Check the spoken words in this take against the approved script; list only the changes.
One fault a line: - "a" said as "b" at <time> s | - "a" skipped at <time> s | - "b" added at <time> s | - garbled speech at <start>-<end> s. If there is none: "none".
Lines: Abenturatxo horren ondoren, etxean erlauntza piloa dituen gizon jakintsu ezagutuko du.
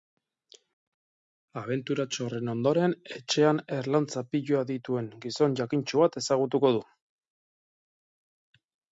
- "bat" added at 6.0 s